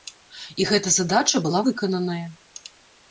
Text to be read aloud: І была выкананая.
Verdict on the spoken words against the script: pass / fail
fail